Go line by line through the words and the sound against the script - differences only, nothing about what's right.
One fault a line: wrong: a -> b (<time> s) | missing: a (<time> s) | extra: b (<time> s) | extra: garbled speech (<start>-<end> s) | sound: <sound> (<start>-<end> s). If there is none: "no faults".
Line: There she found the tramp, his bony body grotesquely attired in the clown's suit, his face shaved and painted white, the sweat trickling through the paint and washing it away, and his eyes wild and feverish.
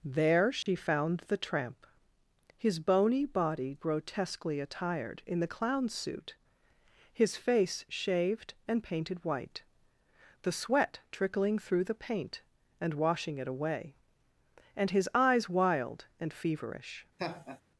sound: dropout (0.6-0.7 s)
sound: laugh (17.2-17.6 s)